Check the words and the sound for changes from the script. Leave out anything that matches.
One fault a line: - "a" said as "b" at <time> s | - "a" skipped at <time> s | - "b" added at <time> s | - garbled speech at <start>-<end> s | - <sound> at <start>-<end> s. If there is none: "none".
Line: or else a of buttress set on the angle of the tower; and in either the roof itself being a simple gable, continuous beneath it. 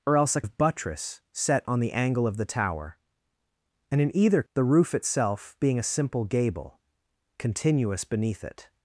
none